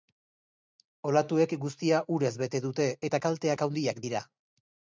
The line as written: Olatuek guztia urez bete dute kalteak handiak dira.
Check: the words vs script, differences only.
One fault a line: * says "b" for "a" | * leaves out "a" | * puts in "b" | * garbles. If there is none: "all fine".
* puts in "eta"